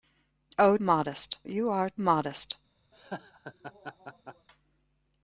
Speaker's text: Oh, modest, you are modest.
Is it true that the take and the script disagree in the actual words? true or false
false